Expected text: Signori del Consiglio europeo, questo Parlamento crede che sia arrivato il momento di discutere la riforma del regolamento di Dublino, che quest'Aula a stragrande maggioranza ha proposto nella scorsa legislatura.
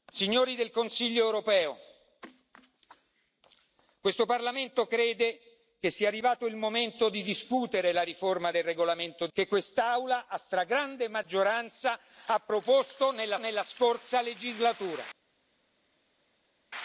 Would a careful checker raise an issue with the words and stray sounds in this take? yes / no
yes